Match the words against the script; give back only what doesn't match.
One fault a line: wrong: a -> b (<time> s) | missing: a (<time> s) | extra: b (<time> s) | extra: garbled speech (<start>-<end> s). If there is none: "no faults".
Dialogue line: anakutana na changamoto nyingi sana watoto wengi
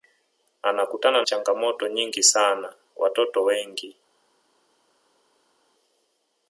missing: na (1.2 s)